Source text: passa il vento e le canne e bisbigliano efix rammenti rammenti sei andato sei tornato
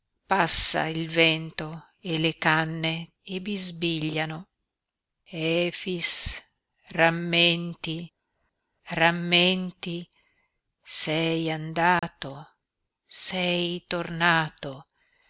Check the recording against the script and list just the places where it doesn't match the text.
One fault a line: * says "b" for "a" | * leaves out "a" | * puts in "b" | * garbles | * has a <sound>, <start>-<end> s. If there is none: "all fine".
* has a dropout, 12.0-12.0 s